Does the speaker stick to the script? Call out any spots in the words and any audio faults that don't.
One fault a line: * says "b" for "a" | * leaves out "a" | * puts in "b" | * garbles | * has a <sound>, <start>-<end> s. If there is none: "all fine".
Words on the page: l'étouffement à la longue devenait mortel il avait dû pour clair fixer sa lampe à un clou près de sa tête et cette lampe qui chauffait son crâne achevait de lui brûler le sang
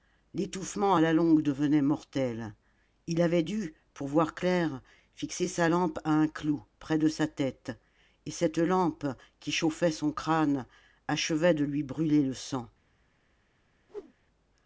* puts in "voir"
* has a whoosh, 13.9-14.1 s